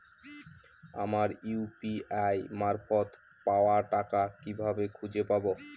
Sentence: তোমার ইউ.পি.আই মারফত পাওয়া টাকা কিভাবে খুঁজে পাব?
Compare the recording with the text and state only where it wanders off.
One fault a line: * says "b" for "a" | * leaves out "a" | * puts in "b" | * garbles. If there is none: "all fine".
* says "আমার" for "তোমার"